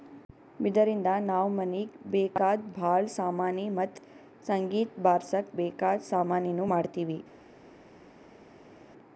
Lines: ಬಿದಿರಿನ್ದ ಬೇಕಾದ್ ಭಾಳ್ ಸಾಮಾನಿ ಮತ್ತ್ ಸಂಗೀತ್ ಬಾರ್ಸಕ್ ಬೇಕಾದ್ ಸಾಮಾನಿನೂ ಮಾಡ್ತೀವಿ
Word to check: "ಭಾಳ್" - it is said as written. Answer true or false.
true